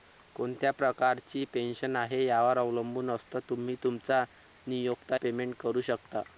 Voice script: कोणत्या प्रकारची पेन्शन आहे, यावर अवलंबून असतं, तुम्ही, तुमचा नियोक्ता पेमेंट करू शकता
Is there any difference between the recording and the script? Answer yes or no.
no